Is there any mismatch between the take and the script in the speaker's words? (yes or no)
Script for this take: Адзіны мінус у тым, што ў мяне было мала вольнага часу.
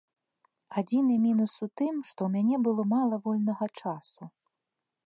no